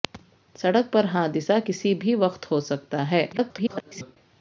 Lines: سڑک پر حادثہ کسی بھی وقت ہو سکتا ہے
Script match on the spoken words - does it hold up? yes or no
no